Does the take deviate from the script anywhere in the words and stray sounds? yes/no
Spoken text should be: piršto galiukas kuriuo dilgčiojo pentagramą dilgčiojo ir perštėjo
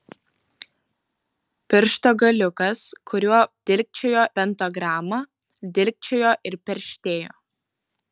no